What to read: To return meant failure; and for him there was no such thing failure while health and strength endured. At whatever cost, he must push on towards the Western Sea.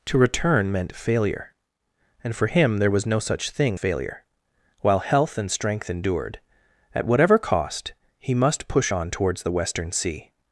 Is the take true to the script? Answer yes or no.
yes